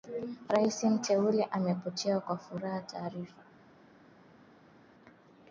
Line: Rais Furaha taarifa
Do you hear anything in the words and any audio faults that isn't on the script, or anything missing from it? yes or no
yes